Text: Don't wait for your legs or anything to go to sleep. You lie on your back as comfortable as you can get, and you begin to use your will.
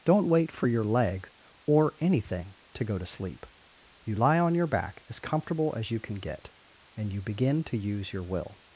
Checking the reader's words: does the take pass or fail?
fail